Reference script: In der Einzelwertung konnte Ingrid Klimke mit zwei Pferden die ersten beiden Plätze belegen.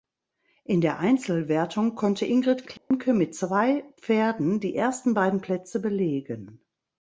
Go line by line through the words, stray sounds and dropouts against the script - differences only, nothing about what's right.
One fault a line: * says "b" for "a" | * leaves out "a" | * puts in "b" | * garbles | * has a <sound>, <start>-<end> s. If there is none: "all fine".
* has a dropout, 2.8-2.9 s